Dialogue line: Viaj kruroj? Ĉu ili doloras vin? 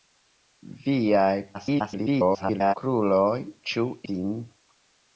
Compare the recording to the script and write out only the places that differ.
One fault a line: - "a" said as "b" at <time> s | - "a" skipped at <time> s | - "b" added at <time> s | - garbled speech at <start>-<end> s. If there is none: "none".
- garbled speech at 1.5-2.7 s
- "ili doloras" skipped at 3.9 s